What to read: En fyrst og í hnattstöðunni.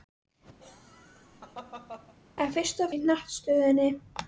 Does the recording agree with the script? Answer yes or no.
yes